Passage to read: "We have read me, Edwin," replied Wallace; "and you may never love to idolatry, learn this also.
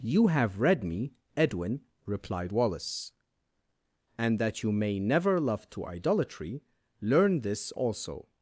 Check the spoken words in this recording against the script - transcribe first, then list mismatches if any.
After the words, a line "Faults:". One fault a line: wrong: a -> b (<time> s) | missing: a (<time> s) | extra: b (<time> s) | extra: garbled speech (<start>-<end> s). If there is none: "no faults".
"You have read me, Edwin," replied Wallace; "and that you may never love to idolatry, learn this also.
Faults:
wrong: We -> You (0.0 s)
extra: that (4.4 s)